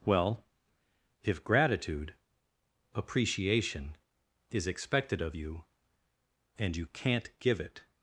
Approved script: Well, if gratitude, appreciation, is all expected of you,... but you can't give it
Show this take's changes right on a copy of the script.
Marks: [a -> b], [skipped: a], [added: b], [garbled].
Well, if gratitude, appreciation, is [skipped: all] expected of you,... [but -> and] you can't give it